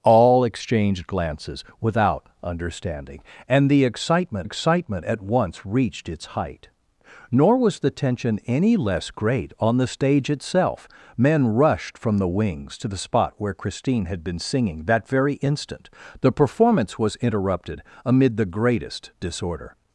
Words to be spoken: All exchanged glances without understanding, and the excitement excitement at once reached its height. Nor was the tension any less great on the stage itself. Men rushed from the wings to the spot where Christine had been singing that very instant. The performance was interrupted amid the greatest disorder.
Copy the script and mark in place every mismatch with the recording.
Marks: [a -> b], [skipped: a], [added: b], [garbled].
All exchanged glances without understanding, and the excitement excitement at once reached its height. Nor was the tension any less great on the stage itself. Men rushed from the wings to the spot where Christine had been singing that very instant. The performance was interrupted amid the greatest disorder.